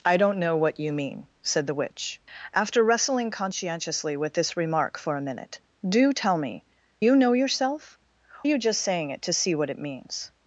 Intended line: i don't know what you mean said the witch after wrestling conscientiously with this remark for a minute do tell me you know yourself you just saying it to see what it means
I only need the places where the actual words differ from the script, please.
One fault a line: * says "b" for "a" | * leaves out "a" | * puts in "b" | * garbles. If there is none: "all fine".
all fine